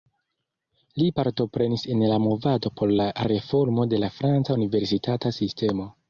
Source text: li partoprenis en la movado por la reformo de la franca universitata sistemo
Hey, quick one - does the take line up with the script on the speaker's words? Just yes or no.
yes